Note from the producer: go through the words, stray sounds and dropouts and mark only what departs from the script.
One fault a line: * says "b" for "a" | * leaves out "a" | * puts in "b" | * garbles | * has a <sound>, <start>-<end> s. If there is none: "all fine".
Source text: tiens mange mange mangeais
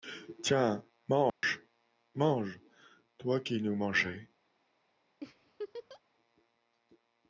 * has a dropout, 1.3-1.4 s
* puts in "toi qui nous"
* has a laugh, 5.2-6.0 s